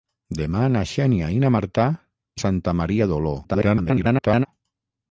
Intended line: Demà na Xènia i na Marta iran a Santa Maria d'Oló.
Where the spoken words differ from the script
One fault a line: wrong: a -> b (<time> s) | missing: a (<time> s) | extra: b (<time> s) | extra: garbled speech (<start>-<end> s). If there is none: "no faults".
missing: iran (1.9 s)
extra: garbled speech (3.4-4.5 s)